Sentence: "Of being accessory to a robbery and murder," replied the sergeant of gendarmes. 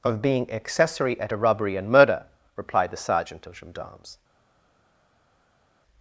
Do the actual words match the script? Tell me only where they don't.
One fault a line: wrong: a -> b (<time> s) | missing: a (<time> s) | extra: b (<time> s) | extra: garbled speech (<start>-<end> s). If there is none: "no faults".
wrong: to -> at (1.2 s)